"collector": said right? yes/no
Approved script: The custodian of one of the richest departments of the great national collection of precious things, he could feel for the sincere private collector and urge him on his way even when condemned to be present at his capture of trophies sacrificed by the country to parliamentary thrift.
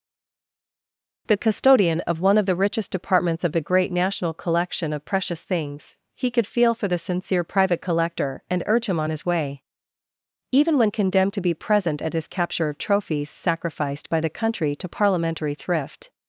yes